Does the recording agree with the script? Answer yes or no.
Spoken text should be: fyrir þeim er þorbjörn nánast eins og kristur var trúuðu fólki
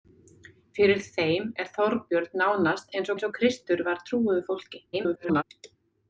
no